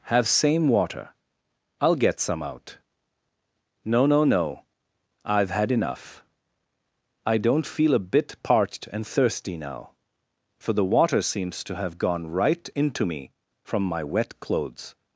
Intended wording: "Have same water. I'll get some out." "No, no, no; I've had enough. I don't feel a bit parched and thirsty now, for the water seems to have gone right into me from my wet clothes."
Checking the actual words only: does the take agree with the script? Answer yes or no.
yes